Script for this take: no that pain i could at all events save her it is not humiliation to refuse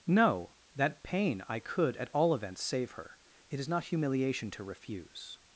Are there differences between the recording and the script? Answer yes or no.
no